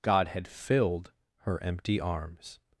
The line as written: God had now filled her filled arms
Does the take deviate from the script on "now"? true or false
true